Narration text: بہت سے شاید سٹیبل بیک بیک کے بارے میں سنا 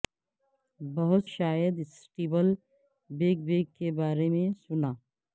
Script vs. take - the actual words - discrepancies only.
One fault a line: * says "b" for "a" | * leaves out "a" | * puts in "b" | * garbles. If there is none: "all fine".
* leaves out "سے"